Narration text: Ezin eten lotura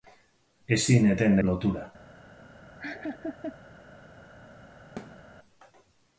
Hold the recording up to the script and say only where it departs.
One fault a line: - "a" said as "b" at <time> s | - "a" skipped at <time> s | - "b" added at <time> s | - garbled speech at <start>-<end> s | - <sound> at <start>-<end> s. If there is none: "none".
- laugh at 2.8-3.6 s
- thud at 5.0-5.2 s